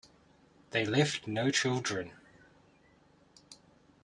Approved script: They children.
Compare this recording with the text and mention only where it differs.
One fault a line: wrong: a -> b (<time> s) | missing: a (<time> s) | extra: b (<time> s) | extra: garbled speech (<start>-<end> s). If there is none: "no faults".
extra: left no (0.8 s)